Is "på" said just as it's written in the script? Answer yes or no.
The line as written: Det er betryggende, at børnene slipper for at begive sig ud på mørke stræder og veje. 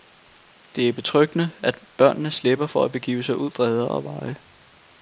no